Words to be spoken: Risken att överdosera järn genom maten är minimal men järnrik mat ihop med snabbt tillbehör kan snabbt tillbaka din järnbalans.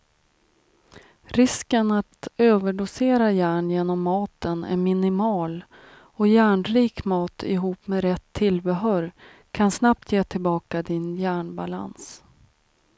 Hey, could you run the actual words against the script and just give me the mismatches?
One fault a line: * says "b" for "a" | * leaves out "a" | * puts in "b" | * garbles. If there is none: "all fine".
* says "och" for "men"
* says "rätt" for "snabbt"
* puts in "ge"